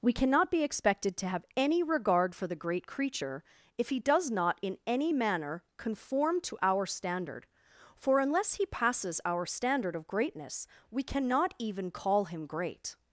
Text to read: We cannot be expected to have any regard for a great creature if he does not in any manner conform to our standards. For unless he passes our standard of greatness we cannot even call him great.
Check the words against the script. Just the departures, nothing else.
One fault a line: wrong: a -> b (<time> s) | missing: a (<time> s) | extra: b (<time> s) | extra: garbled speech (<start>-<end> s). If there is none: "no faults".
wrong: a -> the (2.5 s)
wrong: standards -> standard (6.9 s)